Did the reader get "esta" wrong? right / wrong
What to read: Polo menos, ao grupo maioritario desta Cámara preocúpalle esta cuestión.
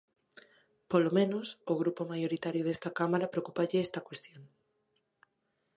right